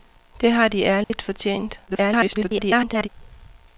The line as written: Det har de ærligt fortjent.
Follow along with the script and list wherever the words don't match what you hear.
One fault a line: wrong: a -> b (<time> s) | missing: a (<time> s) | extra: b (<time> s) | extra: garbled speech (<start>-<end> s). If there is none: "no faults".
extra: garbled speech (1.9-3.1 s)